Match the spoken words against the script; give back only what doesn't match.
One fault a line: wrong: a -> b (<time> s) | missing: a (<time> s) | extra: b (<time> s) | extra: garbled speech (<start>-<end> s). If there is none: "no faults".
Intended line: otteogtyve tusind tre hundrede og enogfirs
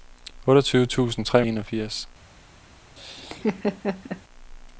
missing: hundrede (1.4 s)